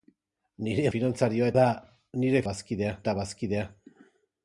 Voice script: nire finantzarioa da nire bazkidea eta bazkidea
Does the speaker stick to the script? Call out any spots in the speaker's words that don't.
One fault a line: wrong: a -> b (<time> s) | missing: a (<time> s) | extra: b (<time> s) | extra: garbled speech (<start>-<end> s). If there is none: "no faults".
no faults